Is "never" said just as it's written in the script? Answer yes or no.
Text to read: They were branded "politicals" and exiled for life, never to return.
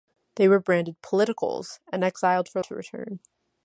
no